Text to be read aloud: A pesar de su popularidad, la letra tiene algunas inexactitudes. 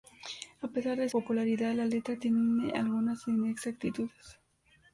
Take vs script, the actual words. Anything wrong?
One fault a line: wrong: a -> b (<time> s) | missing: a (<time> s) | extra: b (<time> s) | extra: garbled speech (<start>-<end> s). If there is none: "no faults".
missing: su (1.1 s)